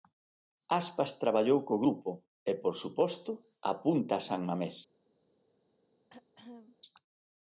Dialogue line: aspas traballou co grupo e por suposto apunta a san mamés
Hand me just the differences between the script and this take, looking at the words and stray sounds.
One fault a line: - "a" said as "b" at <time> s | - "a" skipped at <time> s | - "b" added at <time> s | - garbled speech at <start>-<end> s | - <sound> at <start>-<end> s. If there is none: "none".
- throat clearing at 6.1-6.8 s